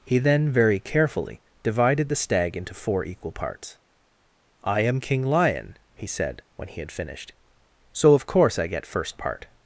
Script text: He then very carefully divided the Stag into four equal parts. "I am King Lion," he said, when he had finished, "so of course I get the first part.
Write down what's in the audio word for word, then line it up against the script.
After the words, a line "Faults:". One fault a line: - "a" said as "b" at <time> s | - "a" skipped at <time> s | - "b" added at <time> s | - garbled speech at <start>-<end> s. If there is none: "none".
He then very carefully divided the Stag into four equal parts. "I am King Lion," he said, when he had finished, "so of course I get first part.
Faults:
- "the" skipped at 8.8 s